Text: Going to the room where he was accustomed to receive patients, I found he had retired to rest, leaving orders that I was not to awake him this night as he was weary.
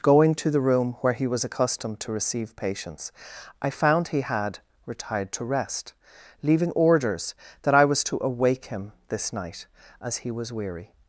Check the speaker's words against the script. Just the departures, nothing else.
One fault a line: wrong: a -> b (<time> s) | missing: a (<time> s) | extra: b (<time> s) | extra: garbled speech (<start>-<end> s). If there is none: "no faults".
missing: not (8.0 s)